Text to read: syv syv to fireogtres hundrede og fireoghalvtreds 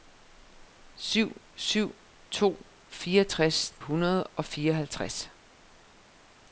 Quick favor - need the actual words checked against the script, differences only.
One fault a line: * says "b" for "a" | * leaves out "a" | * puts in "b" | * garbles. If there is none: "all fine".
all fine